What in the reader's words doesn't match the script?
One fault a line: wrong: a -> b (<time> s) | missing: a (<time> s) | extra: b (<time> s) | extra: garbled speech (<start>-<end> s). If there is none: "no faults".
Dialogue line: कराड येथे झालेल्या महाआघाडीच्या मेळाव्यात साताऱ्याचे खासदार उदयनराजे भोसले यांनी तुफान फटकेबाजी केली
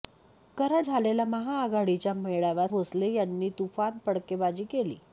missing: येथे (0.8 s)
missing: साताऱ्याचे खासदार उदयनराजे (2.7 s)